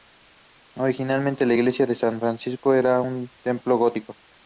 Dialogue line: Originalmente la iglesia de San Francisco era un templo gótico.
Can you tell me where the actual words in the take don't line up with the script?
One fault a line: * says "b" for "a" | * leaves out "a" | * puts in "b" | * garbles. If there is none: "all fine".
all fine